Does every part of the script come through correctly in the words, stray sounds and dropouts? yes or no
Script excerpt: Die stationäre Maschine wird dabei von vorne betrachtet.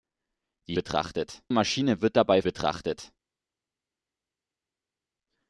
no